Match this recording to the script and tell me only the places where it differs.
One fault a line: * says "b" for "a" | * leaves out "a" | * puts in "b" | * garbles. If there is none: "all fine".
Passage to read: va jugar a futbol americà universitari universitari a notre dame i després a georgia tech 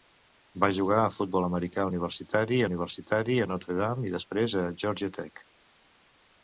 all fine